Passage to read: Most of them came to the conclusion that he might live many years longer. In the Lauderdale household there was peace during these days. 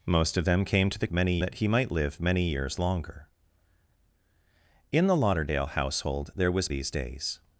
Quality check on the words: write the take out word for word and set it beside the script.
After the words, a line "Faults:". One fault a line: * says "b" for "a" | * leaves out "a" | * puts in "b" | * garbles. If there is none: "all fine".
Most of them came to the many that he might live many years longer. In the Lauderdale household there was these days.
Faults:
* says "many" for "conclusion"
* leaves out "peace during"